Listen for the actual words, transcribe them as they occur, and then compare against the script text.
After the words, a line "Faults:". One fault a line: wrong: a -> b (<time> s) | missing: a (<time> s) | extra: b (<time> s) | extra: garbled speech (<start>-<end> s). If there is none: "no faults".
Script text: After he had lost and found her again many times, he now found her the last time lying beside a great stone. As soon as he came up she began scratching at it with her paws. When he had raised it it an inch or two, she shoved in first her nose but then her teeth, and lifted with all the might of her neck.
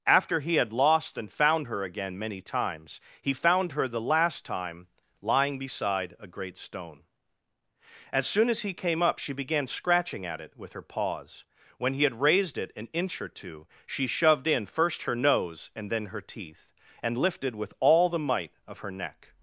After he had lost and found her again many times, he found her the last time lying beside a great stone. As soon as he came up she began scratching at it with her paws. When he had raised it an inch or two, she shoved in first her nose and then her teeth, and lifted with all the might of her neck.
Faults:
missing: now (3.3 s)
missing: it (12.7 s)
wrong: but -> and (15.7 s)